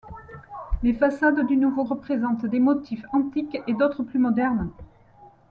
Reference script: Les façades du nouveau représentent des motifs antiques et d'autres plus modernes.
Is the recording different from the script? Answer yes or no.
no